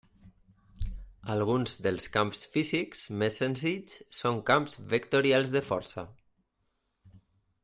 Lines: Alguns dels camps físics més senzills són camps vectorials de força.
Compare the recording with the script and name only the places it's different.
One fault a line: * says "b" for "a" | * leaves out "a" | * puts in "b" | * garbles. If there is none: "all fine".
all fine